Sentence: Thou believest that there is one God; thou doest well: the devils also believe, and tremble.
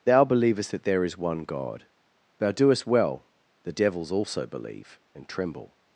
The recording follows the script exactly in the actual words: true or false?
true